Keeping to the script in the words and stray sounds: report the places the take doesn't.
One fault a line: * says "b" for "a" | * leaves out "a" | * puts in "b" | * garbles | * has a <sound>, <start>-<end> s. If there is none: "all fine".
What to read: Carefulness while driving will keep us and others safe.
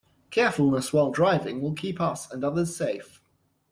all fine